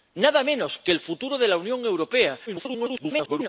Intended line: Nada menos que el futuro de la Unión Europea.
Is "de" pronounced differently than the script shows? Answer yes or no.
no